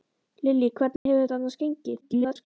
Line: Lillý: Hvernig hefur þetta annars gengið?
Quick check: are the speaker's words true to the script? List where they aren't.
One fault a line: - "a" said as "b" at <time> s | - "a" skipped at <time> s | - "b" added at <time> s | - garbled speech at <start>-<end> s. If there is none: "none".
- garbled speech at 2.0-2.5 s